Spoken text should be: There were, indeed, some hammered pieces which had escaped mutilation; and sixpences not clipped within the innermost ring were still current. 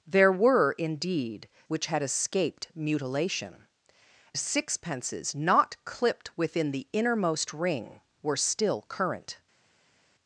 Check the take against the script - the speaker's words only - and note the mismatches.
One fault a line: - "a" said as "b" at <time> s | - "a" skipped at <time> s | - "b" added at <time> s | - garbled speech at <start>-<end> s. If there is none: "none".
- "some hammered pieces" skipped at 1.5 s
- "and" skipped at 3.7 s